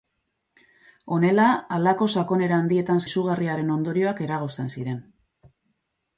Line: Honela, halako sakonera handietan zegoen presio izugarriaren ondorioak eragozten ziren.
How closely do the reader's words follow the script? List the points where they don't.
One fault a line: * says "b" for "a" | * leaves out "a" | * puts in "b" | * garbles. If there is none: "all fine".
* leaves out "zegoen presio"